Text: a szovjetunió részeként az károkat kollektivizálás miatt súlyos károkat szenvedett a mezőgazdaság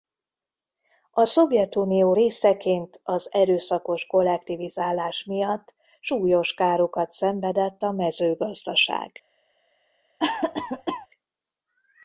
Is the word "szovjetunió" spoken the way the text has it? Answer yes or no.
yes